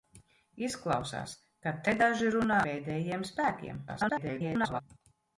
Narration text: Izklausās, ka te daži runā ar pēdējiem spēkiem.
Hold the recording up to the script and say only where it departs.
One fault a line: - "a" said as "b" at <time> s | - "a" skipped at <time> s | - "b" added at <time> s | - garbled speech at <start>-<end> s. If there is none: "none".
- "ar" skipped at 2.6 s
- garbled speech at 3.9-4.8 s